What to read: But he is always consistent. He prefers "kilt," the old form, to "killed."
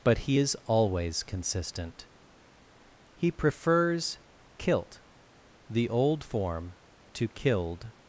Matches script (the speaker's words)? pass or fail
pass